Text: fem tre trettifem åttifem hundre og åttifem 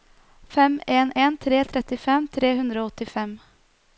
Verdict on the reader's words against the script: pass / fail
fail